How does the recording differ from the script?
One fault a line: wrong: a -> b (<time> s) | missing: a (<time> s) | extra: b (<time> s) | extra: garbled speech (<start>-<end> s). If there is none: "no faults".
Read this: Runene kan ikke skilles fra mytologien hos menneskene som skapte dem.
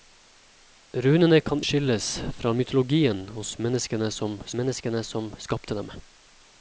missing: ikke (1.6 s)
extra: menneskene som (4.6 s)